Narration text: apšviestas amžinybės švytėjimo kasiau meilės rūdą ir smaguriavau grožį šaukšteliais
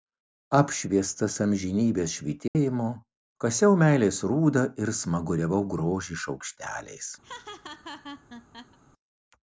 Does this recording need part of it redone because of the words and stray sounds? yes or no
yes